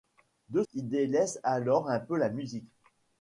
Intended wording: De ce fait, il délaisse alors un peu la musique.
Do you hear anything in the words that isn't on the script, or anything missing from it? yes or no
yes